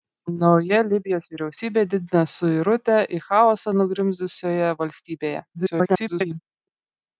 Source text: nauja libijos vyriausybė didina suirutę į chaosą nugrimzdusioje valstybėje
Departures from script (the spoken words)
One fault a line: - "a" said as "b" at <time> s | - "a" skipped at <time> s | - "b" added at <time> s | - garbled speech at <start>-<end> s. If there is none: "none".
- garbled speech at 5.5-6.4 s